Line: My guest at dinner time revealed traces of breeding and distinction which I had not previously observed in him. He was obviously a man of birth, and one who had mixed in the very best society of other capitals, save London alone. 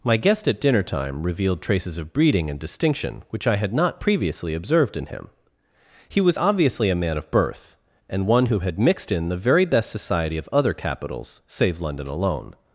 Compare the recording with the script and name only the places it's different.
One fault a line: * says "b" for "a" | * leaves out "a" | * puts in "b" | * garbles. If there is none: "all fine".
all fine